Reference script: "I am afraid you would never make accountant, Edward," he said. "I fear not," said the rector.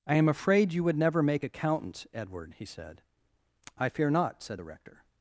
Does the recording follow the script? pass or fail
pass